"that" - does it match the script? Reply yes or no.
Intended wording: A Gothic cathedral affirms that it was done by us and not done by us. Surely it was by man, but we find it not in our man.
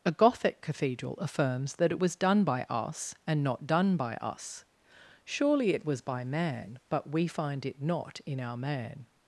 yes